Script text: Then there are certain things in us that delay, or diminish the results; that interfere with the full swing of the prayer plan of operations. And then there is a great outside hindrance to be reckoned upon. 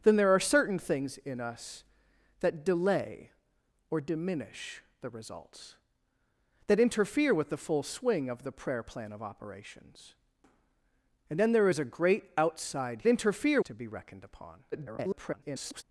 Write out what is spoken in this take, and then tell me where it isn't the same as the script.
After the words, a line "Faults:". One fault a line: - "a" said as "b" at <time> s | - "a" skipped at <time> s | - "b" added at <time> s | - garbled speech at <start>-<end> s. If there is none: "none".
Then there are certain things in us that delay, or diminish the results; that interfere with the full swing of the prayer plan of operations. And then there is a great outside interfere to be reckoned upon. [garbled]
Faults:
- "hindrance" said as "interfere" at 13.1 s
- garbled speech at 14.7-15.8 s